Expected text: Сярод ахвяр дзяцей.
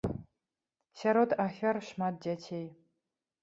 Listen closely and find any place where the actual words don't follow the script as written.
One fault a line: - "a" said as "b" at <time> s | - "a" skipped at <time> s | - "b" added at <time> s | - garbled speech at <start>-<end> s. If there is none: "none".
- "шмат" added at 1.9 s